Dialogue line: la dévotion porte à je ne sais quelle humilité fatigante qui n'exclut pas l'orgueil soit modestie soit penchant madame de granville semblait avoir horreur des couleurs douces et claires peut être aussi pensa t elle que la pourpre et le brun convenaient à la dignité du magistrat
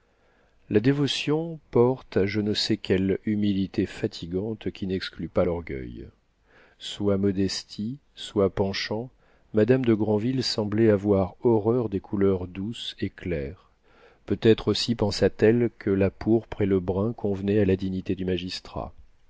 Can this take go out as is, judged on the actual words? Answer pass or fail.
pass